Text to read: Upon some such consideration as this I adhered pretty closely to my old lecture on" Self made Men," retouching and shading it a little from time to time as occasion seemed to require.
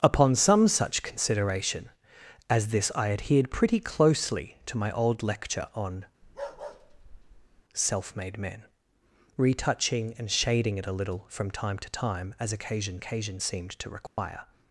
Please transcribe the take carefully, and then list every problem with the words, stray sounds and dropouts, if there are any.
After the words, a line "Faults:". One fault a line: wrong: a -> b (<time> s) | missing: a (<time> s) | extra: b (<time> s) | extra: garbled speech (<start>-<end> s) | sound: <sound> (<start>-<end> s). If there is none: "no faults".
Upon some such consideration as this I adhered pretty closely to my old lecture on" Self made Men," retouching and shading it a little from time to time as occasion occasion seemed to require.
Faults:
sound: bark (6.2-7.6 s)
extra: occasion (13.0 s)
sound: dropout (14.1-14.2 s)